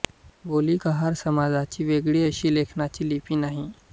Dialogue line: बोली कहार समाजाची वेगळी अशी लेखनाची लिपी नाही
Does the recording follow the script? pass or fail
pass